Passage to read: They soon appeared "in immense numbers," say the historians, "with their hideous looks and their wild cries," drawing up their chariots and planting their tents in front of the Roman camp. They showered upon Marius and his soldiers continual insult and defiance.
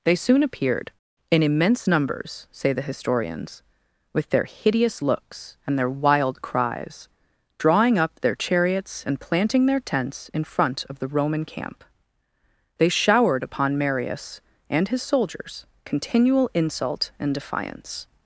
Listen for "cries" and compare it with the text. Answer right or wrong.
right